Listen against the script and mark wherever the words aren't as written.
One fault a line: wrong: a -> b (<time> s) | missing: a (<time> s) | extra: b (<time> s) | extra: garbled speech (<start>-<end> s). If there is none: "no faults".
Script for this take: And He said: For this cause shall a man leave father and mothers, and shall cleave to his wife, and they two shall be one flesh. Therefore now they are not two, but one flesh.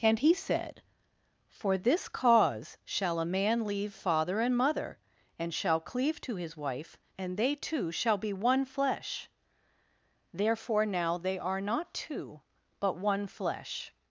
wrong: mothers -> mother (4.6 s)